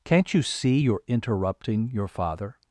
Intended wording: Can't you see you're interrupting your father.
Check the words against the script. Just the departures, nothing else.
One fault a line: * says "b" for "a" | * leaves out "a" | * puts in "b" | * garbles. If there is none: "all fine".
all fine